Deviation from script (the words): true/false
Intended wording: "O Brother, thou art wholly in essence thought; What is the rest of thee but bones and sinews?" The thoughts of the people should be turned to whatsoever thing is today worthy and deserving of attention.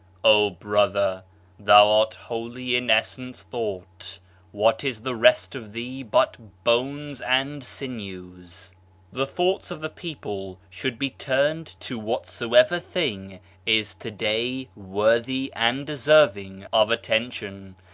false